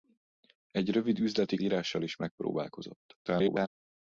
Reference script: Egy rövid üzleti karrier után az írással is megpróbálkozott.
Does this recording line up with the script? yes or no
no